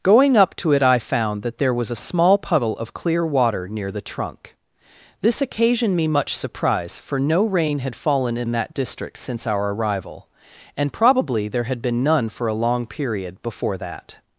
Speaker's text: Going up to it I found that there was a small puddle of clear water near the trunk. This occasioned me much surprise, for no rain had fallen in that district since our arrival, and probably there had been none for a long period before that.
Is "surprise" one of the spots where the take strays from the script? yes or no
no